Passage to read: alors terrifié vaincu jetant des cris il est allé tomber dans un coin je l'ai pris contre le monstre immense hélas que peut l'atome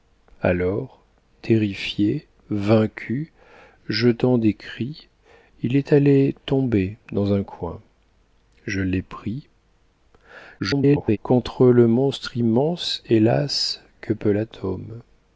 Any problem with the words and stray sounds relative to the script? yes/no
yes